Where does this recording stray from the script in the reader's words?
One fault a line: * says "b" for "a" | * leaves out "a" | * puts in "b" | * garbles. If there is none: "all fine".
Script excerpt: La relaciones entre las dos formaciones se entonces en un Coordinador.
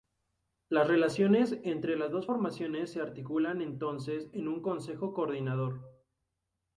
* says "Las" for "La"
* puts in "articulan"
* puts in "Consejo"